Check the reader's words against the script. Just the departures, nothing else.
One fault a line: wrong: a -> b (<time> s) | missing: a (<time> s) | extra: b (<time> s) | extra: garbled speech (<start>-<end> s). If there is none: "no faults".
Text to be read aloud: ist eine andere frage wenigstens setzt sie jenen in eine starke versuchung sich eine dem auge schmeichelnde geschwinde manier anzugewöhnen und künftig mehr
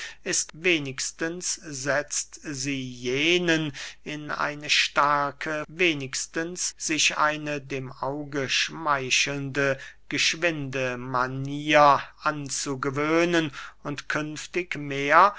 missing: eine andere frage (0.5 s)
wrong: versuchung -> wenigstens (5.7 s)